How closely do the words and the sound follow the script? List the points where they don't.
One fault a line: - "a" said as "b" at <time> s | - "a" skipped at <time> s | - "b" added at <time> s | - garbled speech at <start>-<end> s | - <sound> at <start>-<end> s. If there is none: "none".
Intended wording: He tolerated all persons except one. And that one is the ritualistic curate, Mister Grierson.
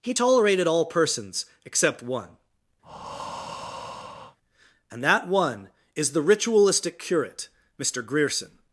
- breath at 2.8-4.4 s